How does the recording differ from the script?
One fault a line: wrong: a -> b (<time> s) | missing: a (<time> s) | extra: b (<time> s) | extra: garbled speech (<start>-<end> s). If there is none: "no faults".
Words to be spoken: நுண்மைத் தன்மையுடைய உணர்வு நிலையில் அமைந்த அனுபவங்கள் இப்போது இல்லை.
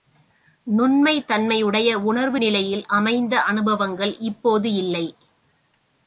no faults